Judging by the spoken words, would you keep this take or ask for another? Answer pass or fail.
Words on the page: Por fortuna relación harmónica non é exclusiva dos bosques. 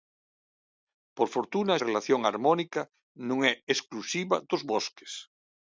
pass